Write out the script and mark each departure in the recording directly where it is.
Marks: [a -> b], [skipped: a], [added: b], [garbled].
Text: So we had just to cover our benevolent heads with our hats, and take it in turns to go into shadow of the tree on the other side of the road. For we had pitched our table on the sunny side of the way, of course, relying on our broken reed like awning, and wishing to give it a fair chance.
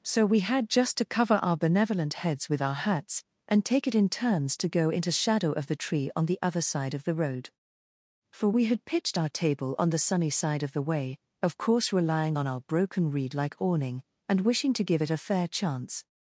So we had just to cover our benevolent heads with our hats, and take it in turns to go into shadow of the tree on the other side of the road. For we had pitched our table on the sunny side of the way, of course, relying on our broken reed like awning, and wishing to give it a fair chance.